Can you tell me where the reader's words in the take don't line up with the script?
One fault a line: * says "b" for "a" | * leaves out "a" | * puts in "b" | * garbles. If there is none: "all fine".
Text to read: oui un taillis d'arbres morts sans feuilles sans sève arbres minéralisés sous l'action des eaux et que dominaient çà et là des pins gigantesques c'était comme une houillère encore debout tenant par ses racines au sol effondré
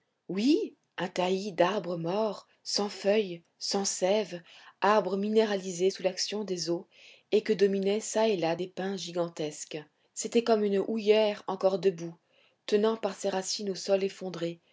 all fine